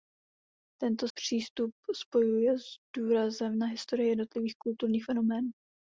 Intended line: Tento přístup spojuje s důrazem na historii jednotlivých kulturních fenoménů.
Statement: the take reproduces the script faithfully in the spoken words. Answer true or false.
true